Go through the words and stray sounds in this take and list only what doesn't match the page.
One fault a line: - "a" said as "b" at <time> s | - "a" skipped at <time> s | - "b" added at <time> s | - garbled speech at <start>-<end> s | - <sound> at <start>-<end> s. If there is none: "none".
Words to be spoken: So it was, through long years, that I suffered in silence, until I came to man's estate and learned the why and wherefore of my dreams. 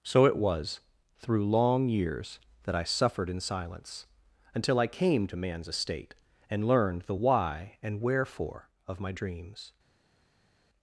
none